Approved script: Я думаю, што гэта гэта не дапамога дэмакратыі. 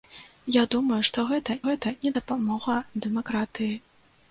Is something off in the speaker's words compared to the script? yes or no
no